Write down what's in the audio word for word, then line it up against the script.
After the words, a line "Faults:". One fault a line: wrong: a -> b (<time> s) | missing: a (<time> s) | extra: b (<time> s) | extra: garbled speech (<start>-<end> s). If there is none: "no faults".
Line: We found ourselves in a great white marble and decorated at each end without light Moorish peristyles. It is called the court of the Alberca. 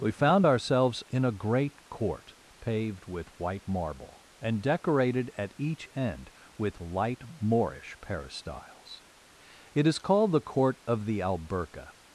We found ourselves in a great court paved with white marble and decorated at each end with light Moorish peristyles. It is called the court of the Alberca.
Faults:
extra: court paved with (1.9 s)
wrong: without -> with (6.6 s)